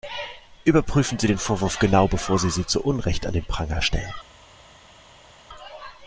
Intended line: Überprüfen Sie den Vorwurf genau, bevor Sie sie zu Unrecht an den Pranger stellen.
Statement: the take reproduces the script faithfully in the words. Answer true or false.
true